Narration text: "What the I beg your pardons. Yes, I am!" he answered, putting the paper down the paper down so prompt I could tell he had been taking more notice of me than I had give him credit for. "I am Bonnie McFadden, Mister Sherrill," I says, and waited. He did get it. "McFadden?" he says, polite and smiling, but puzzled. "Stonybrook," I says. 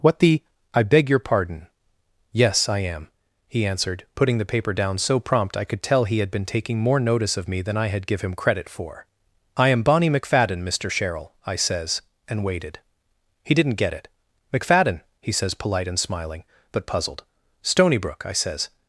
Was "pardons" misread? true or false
true